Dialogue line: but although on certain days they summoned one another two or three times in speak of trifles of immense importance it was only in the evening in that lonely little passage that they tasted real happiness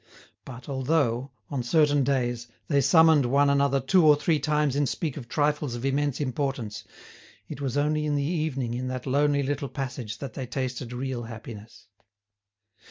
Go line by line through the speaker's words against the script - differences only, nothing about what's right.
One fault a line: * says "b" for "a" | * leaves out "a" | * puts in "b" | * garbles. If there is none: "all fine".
all fine